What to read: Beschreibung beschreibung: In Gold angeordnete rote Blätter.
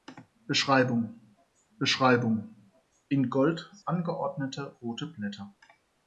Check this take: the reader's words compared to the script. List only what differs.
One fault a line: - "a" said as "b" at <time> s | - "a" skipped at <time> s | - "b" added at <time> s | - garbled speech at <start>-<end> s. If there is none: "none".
none